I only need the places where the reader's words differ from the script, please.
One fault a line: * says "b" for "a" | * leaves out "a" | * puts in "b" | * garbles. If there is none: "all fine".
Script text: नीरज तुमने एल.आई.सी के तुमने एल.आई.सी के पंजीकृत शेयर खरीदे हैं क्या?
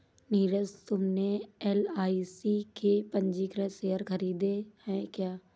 * leaves out "तुमने एल.आई.सी के"